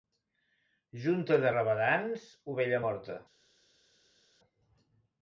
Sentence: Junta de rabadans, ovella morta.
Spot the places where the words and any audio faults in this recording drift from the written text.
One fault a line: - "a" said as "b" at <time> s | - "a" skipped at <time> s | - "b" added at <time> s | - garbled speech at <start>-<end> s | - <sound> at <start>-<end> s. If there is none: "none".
none